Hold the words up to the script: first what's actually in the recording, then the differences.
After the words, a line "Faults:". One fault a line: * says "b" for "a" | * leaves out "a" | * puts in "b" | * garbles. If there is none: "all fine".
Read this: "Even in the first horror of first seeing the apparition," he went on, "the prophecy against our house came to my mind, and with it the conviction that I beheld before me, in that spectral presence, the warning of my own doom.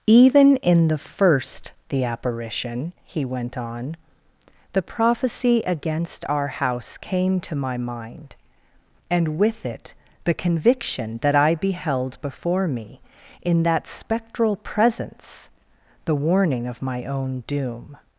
"Even in the first the apparition," he went on, "the prophecy against our house came to my mind, and with it the conviction that I beheld before me, in that spectral presence, the warning of my own doom.
Faults:
* leaves out "horror of first seeing"